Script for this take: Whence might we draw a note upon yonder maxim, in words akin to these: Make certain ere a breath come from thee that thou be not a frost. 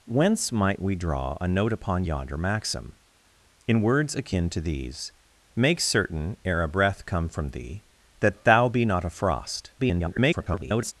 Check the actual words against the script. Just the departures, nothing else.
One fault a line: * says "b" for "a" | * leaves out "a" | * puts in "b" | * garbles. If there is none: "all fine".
* garbles